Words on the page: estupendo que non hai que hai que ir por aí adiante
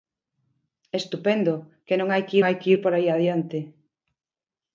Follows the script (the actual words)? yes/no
yes